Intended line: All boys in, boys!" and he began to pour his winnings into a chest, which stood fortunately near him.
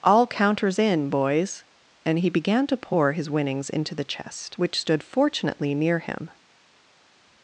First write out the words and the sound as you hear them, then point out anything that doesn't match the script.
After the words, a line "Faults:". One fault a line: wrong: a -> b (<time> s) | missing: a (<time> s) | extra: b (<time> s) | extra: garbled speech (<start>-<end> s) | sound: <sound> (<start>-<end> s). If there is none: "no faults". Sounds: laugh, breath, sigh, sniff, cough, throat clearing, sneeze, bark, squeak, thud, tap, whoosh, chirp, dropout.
All counters in, boys!" and he began to pour his winnings into the chest, which stood fortunately near him.
Faults:
wrong: boys -> counters (0.2 s)
wrong: a -> the (3.9 s)